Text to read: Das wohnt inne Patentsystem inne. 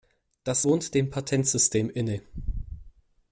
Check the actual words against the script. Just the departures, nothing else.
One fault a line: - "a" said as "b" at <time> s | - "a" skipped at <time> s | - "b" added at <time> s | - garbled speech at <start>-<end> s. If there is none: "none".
- "inne" said as "dem" at 0.9 s